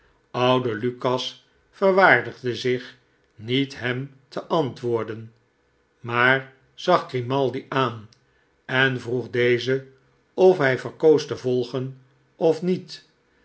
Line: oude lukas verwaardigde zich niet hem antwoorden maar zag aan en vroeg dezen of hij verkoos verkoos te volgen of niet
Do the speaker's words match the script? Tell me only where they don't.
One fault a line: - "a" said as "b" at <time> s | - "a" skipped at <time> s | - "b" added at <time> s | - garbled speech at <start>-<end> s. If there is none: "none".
- "te" added at 4.3 s
- "grimaldi" added at 7.1 s
- "verkoos" skipped at 11.2 s